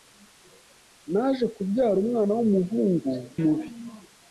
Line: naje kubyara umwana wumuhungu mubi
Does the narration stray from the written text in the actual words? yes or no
no